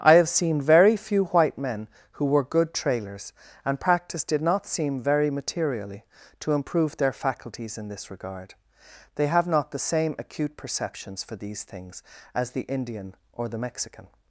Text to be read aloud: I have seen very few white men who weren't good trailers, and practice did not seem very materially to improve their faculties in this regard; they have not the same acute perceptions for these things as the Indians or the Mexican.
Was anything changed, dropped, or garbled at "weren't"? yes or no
yes